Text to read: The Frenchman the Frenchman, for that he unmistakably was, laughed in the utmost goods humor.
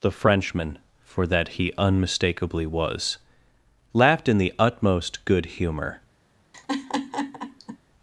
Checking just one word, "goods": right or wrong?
wrong